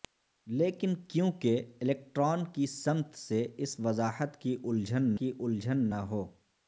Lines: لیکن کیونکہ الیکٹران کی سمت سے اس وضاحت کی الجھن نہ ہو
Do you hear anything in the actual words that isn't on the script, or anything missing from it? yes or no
yes